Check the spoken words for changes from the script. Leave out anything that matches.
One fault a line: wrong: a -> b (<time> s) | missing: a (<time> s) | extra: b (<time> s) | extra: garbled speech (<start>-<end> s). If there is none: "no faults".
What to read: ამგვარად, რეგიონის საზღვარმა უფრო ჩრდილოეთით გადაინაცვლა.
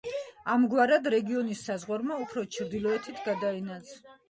no faults